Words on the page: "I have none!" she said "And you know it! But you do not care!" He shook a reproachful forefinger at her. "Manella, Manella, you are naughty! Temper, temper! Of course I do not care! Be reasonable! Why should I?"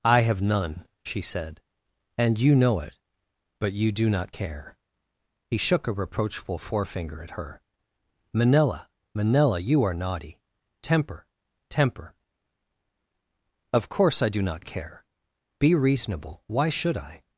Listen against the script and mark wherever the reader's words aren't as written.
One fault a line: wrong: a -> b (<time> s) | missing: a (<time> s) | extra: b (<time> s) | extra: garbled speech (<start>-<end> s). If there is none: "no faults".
no faults